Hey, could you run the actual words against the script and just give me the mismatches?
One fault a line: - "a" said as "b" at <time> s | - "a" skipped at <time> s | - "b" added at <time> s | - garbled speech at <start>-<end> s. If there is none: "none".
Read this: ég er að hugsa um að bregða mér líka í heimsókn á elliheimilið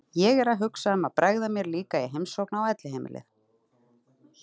none